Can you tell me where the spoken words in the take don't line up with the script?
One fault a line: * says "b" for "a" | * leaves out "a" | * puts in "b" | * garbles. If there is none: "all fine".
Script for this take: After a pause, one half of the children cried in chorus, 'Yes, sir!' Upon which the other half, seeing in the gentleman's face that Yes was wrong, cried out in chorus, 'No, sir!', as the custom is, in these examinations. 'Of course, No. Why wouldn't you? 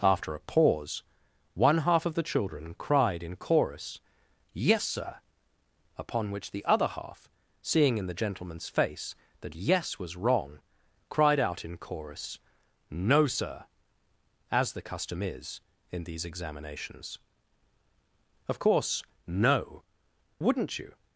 * leaves out "Why"